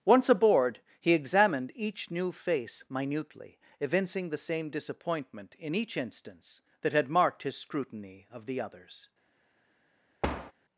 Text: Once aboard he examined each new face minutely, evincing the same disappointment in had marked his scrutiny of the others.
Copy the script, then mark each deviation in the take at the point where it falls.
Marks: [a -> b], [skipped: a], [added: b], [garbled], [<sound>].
Once aboard he examined each new face minutely, evincing the same disappointment in [added: each instance that] had marked his scrutiny of the others. [thud]